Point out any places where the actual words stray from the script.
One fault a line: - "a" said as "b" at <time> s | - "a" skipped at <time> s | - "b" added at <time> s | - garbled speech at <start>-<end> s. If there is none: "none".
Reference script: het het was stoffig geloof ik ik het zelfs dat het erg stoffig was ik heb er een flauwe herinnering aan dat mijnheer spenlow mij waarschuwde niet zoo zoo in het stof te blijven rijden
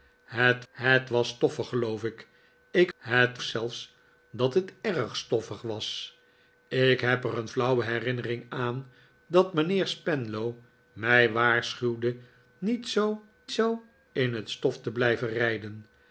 none